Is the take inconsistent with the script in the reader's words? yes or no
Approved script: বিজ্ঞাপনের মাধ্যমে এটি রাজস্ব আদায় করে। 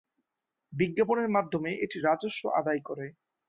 no